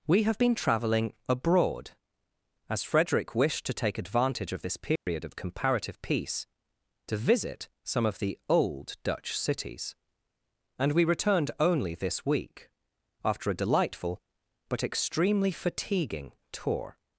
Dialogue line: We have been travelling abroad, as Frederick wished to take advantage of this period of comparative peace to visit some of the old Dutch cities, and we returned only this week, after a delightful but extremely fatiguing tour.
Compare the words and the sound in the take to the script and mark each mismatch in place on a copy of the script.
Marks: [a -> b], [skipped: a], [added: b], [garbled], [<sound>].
We have been travelling abroad, as Frederick wished to take advantage of this period [dropout] of comparative peace to visit some of the old Dutch cities, and we returned only this week, after a delightful but extremely fatiguing tour.